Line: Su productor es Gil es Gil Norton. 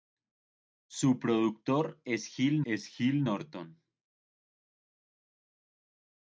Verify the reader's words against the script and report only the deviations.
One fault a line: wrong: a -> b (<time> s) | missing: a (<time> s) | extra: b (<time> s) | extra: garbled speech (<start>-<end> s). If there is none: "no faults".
no faults